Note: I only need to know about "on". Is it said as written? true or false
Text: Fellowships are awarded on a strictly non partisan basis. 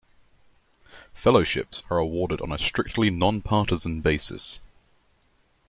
true